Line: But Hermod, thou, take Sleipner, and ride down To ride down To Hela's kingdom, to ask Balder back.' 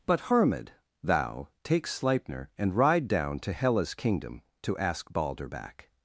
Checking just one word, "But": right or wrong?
right